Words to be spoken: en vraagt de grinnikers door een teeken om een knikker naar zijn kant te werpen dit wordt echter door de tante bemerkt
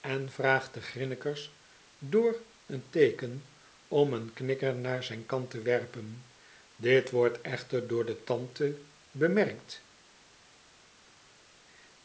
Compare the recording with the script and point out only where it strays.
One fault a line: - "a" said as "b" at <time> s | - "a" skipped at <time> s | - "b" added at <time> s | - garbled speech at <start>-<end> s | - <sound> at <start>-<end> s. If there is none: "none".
none